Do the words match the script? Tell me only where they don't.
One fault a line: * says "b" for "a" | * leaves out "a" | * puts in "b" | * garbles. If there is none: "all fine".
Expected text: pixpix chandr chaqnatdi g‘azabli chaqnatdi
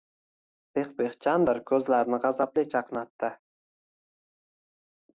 * says "ko‘zlarini" for "chaqnatdi"